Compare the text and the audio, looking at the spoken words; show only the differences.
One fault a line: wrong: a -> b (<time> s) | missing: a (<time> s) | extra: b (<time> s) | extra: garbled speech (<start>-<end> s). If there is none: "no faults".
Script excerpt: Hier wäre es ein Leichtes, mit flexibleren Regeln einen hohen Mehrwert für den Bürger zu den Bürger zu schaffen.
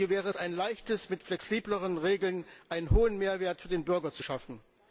missing: den Bürger zu (4.2 s)